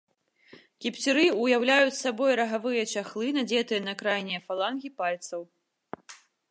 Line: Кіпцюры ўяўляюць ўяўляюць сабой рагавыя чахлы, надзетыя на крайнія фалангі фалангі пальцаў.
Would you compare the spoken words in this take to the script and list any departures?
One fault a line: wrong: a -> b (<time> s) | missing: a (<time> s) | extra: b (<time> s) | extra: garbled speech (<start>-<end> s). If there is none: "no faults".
missing: ўяўляюць (2.0 s)
missing: фалангі (4.9 s)